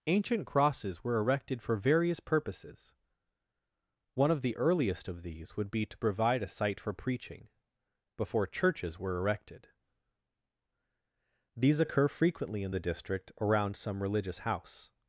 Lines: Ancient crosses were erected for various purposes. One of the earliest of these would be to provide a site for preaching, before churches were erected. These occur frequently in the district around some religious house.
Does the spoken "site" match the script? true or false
true